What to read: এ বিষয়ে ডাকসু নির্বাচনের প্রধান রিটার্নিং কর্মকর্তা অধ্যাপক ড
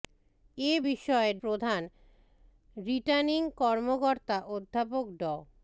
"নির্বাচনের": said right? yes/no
no